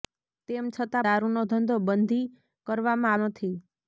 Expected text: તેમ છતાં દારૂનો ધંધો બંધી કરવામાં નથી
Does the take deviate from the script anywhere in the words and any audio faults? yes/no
no